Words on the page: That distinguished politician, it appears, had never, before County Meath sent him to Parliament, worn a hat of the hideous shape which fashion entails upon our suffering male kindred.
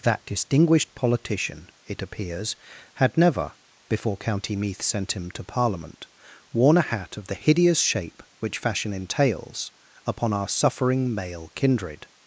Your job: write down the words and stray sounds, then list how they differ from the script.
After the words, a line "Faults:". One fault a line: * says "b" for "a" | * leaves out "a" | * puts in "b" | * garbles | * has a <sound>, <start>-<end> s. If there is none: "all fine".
That distinguished politician, it appears, had never, before County Meath sent him to Parliament, worn a hat of the hideous shape which fashion entails upon our suffering male kindred.
Faults:
all fine